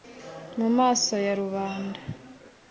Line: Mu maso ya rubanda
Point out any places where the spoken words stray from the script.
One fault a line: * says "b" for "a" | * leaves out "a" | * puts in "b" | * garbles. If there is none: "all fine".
all fine